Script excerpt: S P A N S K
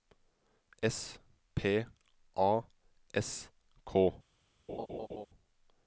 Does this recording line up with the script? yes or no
no